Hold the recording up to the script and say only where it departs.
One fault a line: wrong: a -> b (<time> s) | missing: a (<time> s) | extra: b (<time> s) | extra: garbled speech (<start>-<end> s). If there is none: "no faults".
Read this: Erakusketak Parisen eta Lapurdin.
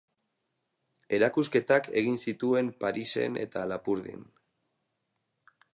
extra: egin zituen (2.0 s)